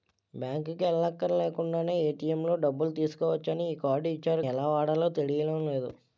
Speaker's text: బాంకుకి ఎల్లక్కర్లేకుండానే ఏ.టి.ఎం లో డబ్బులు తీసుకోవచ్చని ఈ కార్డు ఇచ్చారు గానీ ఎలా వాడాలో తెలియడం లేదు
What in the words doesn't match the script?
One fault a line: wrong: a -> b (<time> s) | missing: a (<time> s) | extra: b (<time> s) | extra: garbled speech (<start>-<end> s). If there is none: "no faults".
missing: గానీ (4.5 s)